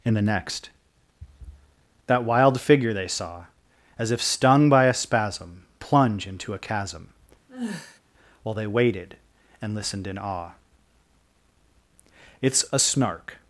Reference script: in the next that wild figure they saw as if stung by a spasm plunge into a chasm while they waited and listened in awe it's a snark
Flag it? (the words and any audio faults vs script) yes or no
yes